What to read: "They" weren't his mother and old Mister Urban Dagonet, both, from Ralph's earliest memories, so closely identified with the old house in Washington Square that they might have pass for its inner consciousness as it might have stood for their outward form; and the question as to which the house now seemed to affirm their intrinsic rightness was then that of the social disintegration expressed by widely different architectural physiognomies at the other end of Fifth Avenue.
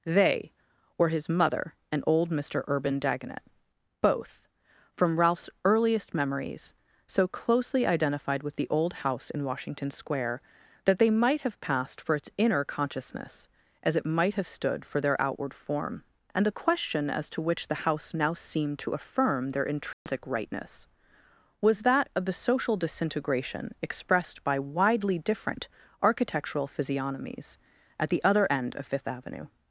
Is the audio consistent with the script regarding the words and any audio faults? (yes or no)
no